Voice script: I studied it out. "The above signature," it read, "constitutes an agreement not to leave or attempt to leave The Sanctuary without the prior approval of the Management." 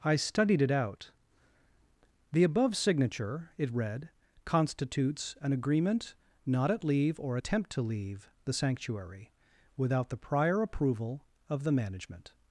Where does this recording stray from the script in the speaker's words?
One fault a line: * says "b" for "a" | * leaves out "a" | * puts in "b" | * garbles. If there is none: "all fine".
* says "at" for "to"